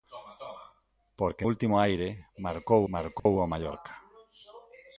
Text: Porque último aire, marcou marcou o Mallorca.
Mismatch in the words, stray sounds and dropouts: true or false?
true